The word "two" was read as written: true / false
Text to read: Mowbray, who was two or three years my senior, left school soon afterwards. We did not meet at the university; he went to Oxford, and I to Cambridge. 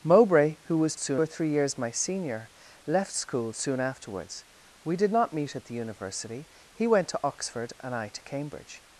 false